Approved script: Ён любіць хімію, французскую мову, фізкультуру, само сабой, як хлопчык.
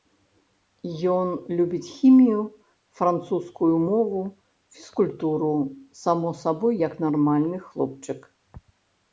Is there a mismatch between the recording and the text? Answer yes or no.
yes